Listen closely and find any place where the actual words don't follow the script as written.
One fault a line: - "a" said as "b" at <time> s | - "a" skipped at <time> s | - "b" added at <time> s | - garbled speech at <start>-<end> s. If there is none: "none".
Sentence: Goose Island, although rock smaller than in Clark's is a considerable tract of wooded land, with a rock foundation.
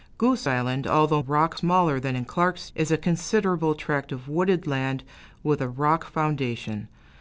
none